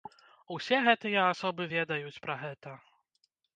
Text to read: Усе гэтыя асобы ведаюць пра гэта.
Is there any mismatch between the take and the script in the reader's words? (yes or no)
no